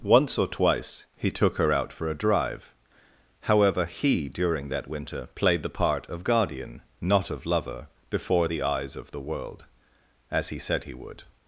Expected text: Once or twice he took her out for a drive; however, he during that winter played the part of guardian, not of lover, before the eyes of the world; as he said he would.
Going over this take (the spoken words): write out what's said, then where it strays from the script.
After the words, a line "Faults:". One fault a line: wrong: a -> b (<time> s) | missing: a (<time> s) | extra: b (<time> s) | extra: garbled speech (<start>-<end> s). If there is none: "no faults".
Once or twice he took her out for a drive; however, he during that winter played the part of guardian, not of lover, before the eyes of the world; as he said he would.
Faults:
no faults